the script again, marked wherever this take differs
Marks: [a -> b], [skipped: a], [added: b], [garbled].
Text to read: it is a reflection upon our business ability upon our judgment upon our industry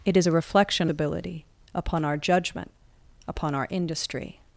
it is a reflection [skipped: upon our business] ability upon our judgment upon our industry